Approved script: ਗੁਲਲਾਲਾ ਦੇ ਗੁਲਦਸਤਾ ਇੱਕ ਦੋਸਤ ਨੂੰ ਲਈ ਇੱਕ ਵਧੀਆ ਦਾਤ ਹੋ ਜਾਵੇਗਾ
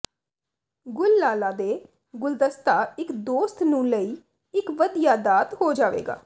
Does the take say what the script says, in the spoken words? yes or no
yes